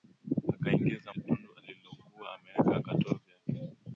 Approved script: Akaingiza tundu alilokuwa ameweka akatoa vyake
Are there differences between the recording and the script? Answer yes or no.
no